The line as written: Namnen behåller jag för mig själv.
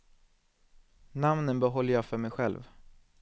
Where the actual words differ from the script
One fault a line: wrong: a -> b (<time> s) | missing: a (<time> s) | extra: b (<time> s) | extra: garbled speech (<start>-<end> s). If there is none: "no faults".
no faults